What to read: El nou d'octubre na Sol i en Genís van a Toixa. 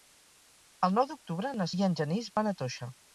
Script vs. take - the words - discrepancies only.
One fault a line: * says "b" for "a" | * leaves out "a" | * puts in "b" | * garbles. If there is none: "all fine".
* leaves out "Sol"